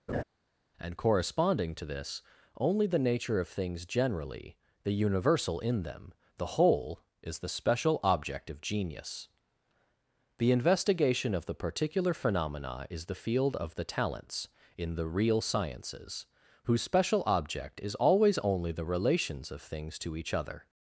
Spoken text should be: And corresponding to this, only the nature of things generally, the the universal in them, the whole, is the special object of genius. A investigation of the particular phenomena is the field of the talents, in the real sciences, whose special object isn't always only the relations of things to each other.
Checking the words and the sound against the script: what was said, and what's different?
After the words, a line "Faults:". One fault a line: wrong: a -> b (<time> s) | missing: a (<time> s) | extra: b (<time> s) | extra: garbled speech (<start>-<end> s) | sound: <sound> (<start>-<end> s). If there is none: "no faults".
And corresponding to this, only the nature of things generally, the universal in them, the whole, is the special object of genius. The investigation of the particular phenomena is the field of the talents, in the real sciences, whose special object is always only the relations of things to each other.
Faults:
sound: laugh (0.1-0.2 s)
missing: the (4.9 s)
wrong: A -> The (10.4 s)
wrong: isn't -> is (17.8 s)